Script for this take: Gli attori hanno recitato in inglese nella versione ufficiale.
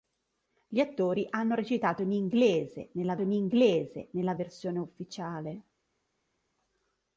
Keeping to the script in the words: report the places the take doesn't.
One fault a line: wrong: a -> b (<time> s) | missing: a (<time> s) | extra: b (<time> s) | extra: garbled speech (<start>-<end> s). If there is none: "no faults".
extra: in inglese nella (3.2 s)